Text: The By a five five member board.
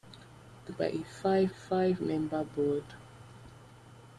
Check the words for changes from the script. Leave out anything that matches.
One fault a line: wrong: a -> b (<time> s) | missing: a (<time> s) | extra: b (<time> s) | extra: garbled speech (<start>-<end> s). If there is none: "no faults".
no faults